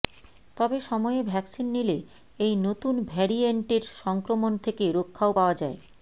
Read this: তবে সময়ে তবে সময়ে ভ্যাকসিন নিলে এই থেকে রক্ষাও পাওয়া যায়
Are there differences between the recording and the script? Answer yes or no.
yes